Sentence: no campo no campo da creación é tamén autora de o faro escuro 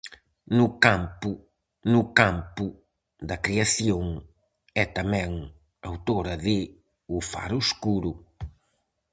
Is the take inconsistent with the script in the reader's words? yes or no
no